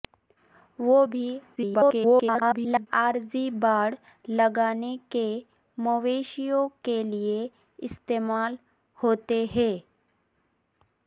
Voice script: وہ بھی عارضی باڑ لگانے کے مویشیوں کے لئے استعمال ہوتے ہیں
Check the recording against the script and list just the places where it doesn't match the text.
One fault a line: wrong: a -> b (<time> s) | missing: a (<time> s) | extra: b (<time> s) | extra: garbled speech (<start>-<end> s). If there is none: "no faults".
extra: garbled speech (1.6-2.9 s)